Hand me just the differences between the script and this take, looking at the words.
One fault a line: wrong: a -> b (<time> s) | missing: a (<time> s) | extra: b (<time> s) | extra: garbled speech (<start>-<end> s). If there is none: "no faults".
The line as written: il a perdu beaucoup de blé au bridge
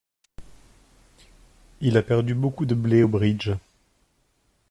no faults